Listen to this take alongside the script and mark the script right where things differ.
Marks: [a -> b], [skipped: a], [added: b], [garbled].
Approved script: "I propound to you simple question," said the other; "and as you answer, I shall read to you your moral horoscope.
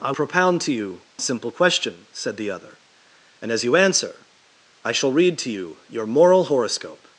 "I propound to you simple question," said the other; "and as you answer, I shall read to you your moral horoscope.